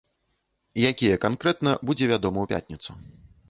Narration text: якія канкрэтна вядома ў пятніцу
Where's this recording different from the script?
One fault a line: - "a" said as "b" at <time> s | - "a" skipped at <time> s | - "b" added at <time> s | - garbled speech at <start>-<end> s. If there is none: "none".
- "будзе" added at 1.9 s